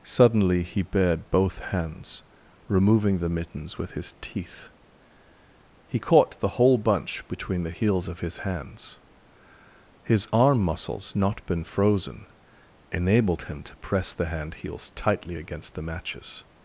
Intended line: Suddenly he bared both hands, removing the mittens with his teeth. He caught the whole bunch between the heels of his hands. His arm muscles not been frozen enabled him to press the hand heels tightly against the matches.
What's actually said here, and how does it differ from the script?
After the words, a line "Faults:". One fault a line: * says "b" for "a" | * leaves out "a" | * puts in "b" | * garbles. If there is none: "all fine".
Suddenly he bared both hands, removing the mittens with his teeth. He caught the whole bunch between the heels of his hands. His arm muscles not been frozen enabled him to press the hand heels tightly against the matches.
Faults:
all fine